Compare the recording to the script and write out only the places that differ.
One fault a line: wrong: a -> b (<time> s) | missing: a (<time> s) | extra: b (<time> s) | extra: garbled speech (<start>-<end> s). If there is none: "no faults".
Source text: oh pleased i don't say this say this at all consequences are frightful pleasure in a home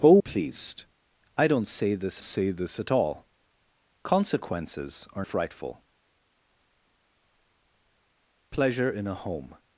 no faults